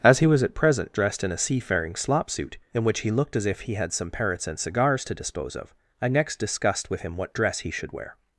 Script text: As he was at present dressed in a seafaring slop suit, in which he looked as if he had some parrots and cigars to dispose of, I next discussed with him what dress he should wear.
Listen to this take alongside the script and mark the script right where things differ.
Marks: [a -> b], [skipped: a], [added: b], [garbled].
As he was at present dressed in a seafaring slop suit, in which he looked as if he had some parrots and cigars to dispose of, I next discussed with him what dress he should wear.